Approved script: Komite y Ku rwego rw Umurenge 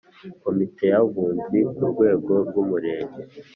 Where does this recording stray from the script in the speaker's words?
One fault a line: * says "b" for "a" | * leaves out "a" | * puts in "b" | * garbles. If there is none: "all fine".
* puts in "Abunzi"